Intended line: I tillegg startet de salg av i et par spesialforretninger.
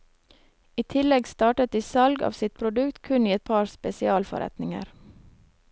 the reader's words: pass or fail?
fail